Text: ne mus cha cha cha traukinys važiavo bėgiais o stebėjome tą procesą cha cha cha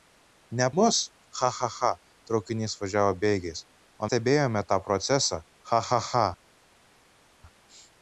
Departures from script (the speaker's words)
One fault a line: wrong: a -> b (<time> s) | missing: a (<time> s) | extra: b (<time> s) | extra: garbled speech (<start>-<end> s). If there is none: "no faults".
no faults